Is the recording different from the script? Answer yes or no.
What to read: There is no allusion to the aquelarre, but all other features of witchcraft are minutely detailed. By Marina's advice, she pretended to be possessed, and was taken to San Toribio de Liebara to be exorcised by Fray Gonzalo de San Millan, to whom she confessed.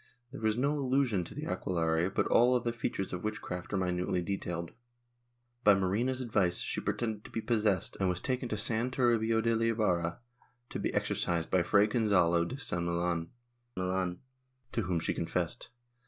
yes